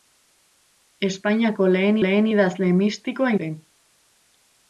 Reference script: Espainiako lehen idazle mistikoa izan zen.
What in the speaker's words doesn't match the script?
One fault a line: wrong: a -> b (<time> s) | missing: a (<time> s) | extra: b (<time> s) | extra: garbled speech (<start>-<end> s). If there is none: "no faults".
extra: lehen (2.0 s)
missing: izan (3.3 s)